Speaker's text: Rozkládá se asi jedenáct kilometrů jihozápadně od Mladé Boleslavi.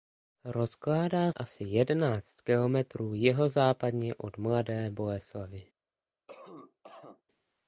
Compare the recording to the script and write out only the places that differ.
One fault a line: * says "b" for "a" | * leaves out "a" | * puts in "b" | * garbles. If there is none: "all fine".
* leaves out "se"